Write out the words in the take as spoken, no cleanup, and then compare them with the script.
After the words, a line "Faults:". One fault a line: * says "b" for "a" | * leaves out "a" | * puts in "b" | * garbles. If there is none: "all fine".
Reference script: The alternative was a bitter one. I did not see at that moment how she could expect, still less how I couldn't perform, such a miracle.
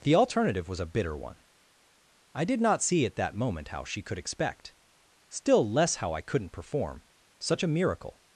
The alternative was a bitter one. I did not see at that moment how she could expect, still less how I couldn't perform, such a miracle.
Faults:
all fine